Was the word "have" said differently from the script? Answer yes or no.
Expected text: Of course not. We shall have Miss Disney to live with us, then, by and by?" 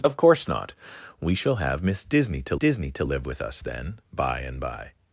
no